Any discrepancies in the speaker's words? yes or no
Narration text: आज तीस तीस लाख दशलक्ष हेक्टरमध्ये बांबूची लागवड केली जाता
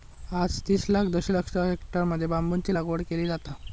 yes